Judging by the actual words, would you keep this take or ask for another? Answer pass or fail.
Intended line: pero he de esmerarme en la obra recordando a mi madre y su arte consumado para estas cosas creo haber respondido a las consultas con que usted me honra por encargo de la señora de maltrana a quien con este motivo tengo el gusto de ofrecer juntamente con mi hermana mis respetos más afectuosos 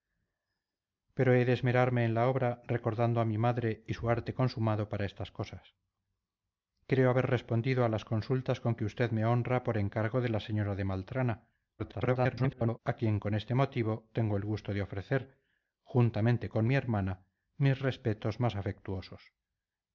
fail